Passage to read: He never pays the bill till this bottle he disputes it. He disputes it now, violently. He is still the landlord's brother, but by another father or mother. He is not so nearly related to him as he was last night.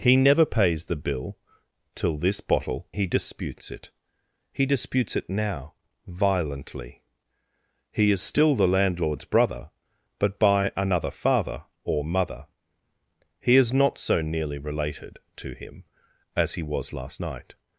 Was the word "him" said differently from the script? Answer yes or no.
no